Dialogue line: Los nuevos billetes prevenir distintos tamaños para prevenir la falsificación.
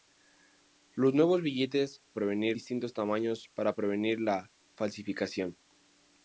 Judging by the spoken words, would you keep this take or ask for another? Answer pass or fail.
pass